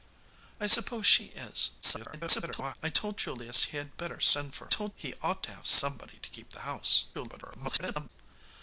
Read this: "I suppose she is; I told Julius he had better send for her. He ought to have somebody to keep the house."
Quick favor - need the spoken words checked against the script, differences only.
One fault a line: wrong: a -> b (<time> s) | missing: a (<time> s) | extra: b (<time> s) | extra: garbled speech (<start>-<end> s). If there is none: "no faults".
extra: garbled speech (1.8-2.8 s)
wrong: her -> told (4.7 s)
extra: garbled speech (7.1-8.1 s)